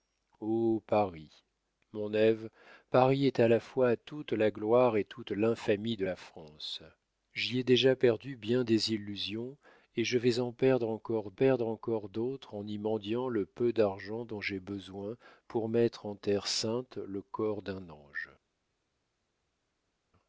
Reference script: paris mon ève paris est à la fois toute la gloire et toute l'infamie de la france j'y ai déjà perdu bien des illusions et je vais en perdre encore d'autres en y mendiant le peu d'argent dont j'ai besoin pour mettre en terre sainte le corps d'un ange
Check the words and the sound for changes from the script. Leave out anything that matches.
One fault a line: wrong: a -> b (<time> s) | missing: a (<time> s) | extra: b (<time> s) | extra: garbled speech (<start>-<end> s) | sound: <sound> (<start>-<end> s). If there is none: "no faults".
extra: perdre encore (11.3 s)